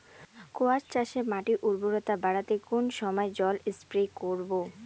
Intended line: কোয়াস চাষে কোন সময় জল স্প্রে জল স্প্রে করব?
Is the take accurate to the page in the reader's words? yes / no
no